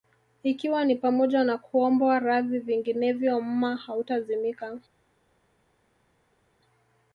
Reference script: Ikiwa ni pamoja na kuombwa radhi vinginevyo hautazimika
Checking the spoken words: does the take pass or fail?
fail